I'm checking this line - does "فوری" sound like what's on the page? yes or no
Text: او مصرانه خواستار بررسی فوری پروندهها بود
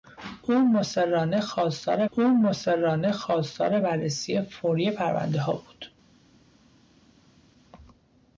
yes